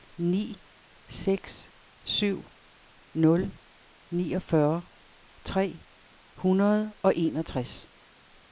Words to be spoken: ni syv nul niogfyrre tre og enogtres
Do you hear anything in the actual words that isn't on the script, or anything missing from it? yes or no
yes